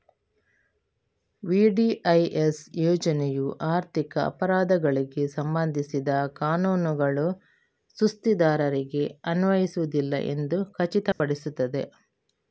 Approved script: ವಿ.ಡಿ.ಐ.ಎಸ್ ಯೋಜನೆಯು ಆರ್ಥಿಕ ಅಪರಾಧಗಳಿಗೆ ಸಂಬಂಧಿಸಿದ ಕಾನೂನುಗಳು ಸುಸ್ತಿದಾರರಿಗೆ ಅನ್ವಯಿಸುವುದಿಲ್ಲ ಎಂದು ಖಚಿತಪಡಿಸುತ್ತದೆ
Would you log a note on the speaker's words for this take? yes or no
no